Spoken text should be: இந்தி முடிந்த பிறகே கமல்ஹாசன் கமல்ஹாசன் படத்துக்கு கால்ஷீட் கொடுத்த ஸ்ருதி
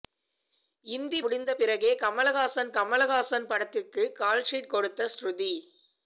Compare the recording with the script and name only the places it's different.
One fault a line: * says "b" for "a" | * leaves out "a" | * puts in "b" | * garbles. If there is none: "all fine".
all fine